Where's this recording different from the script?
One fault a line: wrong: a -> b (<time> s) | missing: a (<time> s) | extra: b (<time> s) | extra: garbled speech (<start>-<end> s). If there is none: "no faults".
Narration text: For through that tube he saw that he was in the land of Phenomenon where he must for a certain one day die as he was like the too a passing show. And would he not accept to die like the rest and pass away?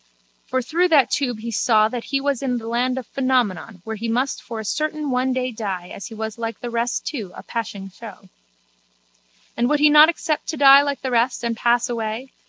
extra: rest (6.7 s)